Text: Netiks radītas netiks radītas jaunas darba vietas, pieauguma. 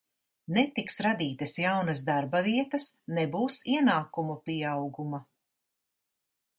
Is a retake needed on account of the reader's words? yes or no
yes